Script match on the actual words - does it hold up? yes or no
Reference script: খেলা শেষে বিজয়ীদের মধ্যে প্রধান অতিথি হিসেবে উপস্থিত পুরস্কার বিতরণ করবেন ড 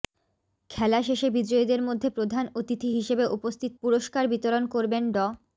yes